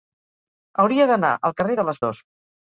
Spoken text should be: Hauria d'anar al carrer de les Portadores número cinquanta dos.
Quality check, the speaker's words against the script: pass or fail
fail